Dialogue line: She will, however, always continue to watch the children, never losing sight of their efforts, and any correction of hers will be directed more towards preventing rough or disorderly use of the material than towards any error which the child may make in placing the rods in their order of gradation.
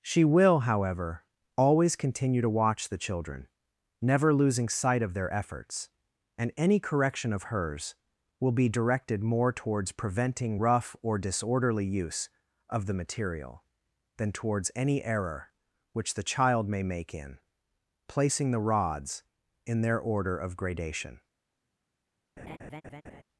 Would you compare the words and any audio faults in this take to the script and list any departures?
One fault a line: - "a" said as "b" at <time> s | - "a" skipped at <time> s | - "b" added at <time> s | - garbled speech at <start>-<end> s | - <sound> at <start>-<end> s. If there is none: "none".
- laugh at 22.4-23.2 s